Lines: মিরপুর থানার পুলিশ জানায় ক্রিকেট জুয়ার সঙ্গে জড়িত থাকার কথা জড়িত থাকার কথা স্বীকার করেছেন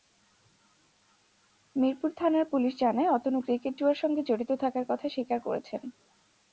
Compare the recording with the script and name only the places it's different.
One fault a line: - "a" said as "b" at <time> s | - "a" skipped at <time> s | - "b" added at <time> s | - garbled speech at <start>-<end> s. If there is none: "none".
- "অতনু" added at 3.1 s
- "জড়িত থাকার কথা" skipped at 5.1 s